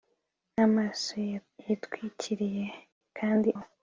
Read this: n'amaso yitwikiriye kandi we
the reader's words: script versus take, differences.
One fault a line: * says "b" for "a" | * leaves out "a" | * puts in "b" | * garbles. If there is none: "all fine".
all fine